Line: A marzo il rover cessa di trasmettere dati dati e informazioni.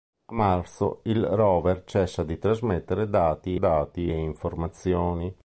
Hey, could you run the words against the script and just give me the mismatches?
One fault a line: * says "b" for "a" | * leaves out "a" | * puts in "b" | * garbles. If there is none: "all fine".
all fine